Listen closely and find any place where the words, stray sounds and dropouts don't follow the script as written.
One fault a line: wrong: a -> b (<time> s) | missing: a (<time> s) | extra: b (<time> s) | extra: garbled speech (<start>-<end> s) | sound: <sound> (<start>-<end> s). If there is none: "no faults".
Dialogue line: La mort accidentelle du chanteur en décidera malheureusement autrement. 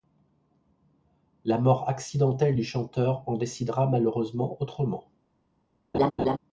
sound: laugh (5.9-6.4 s)